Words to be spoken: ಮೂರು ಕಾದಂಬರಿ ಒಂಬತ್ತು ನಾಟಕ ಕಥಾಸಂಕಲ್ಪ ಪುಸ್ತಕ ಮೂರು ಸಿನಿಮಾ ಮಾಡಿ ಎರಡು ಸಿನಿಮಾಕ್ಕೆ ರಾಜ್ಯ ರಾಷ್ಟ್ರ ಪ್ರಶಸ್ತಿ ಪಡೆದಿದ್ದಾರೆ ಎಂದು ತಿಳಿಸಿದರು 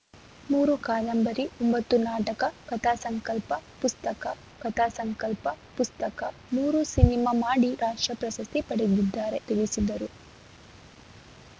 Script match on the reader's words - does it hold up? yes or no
no